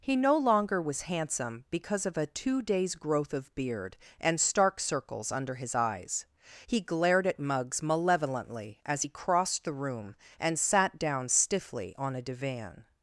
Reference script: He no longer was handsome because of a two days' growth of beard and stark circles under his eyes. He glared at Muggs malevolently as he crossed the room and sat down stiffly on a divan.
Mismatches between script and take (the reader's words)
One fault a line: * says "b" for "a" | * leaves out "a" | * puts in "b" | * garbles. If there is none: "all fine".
all fine